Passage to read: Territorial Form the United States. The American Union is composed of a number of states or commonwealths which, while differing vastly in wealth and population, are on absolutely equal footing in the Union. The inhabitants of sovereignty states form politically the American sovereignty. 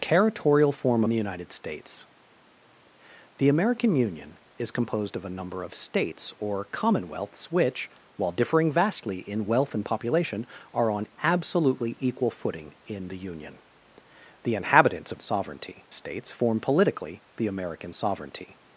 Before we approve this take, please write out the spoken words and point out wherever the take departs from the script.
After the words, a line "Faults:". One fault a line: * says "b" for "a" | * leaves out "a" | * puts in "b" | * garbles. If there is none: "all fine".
Territorial Form the United States. The American Union is composed of a number of states or commonwealths which, while differing vastly in wealth and population, are on absolutely equal footing in the Union. The inhabitants of sovereignty states form politically the American sovereignty.
Faults:
all fine